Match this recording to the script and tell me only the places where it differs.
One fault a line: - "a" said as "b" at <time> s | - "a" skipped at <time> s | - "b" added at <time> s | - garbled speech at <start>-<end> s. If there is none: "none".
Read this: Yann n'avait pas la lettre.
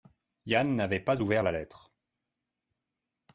- "ouvert" added at 1.2 s